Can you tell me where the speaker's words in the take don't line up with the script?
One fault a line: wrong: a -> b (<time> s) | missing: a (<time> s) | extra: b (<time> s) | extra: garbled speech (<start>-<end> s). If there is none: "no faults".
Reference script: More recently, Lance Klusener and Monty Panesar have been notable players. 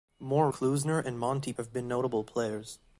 missing: recently Lance (0.5 s)
missing: Panesar (1.5 s)